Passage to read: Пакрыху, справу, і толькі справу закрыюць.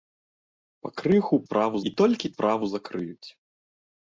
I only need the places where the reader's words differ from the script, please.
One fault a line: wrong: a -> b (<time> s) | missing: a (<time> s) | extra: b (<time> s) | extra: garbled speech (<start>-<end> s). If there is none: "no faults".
no faults